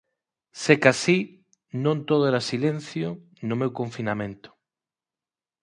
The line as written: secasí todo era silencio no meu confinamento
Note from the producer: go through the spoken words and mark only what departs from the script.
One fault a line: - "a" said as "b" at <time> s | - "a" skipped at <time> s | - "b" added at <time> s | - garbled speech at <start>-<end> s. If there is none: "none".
- "non" added at 1.8 s